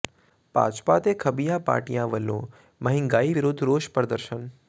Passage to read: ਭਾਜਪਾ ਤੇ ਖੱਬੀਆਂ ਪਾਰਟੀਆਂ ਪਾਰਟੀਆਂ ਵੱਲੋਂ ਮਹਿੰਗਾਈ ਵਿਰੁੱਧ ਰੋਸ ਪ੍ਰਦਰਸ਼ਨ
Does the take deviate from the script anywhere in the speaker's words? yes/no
yes